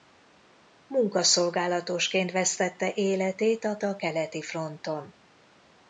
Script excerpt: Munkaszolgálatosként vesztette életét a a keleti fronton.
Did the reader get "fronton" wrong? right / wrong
right